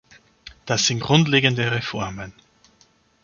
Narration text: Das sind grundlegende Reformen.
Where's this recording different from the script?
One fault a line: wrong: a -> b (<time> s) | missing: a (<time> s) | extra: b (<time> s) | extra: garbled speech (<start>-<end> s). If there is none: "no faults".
no faults